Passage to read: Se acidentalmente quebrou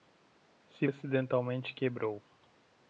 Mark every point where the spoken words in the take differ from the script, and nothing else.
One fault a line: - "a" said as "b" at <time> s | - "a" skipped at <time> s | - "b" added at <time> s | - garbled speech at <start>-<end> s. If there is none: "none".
none